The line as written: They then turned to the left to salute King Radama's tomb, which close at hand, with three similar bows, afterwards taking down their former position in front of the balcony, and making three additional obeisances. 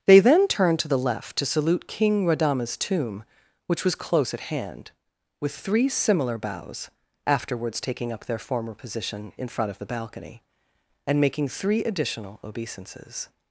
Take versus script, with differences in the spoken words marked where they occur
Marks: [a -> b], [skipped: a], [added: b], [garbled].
They then turned to the left to salute King Radama's tomb, which [added: was] close at hand, with three similar bows, afterwards taking [down -> up] their former position in front of the balcony, and making three additional obeisances.